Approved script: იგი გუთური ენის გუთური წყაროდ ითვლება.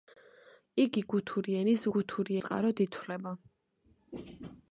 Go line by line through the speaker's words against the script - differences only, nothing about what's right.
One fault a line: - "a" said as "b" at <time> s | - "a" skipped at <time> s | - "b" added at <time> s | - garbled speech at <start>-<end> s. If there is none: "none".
none